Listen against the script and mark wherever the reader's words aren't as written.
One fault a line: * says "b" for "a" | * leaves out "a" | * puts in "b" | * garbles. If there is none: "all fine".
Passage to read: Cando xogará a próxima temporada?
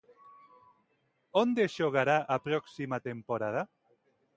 * says "Onde" for "Cando"